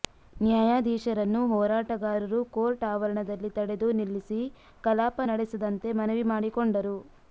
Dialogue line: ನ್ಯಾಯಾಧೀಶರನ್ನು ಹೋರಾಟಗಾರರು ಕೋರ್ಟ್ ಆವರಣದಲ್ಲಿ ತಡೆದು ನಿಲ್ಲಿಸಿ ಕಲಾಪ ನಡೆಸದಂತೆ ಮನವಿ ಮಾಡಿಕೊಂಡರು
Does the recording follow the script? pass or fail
pass